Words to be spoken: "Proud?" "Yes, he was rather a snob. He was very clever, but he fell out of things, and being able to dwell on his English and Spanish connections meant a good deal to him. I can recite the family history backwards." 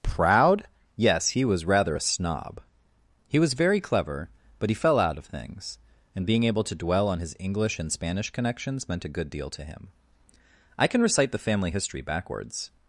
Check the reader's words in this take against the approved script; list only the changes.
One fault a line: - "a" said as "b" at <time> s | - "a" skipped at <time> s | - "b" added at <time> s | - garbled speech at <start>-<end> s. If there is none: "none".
none